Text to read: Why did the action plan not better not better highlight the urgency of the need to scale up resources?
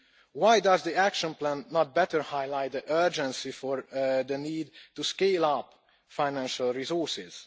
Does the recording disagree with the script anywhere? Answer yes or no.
yes